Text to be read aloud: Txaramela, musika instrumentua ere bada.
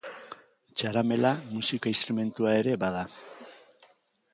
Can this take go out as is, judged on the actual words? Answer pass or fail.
pass